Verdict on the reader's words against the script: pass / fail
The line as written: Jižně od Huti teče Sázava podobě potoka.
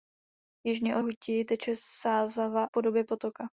pass